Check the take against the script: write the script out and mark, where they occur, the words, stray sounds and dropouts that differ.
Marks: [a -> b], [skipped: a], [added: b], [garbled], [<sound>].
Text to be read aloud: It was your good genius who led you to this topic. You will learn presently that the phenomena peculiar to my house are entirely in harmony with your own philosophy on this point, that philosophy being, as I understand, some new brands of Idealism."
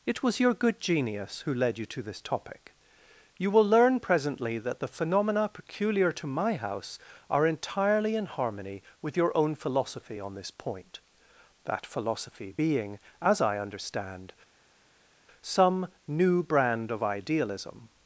It was your good genius who led you to this topic. You will learn presently that the phenomena peculiar to my house are entirely in harmony with your own philosophy on this point, that philosophy being, as I understand, some new [brands -> brand] of Idealism."